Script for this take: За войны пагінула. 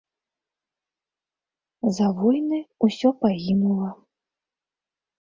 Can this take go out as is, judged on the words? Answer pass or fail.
fail